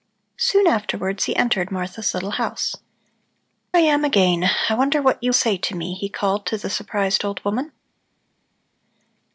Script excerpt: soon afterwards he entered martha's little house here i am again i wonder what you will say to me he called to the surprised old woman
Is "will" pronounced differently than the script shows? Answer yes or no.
yes